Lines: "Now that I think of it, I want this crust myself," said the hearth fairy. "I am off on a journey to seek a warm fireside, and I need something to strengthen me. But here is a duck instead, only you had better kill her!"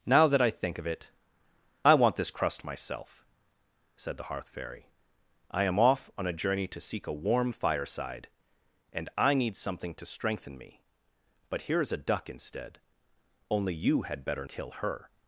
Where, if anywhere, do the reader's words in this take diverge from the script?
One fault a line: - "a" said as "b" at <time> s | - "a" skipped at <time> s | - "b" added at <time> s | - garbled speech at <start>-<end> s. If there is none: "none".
none